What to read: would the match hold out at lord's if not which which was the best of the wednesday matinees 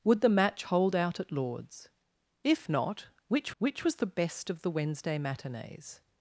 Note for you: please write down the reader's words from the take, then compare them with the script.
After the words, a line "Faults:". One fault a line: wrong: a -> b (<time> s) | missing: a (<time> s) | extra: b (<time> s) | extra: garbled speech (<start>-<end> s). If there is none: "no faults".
would the match hold out at lord's if not which which was the best of the wednesday matinees
Faults:
no faults